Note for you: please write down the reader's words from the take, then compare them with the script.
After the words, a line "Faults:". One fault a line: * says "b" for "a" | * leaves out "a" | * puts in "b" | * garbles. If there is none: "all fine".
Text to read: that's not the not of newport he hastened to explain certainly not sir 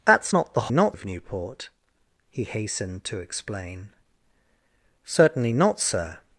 that's not the not of newport he hastened to explain certainly not sir
Faults:
all fine